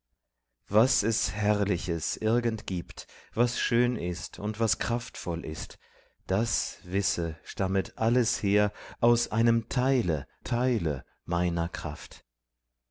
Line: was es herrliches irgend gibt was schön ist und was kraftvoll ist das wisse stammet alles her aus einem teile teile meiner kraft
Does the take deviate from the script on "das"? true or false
false